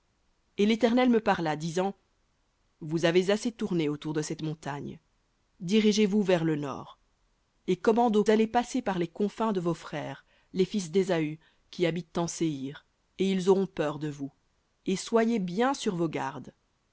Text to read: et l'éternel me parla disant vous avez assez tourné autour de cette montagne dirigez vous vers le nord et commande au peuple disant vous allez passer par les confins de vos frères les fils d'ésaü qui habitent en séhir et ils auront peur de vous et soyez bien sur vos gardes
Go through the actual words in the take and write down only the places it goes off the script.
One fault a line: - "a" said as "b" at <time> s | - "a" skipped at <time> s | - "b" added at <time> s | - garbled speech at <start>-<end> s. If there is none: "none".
- "peuple disant vous" skipped at 8.2 s